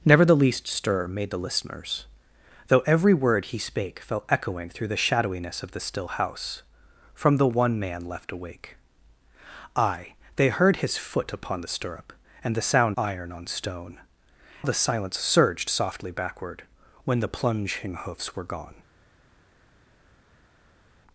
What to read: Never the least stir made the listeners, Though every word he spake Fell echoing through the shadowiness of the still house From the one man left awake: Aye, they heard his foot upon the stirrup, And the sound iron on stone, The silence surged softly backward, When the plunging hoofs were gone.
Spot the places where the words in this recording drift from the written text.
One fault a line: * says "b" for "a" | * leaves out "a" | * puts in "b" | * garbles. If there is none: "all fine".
all fine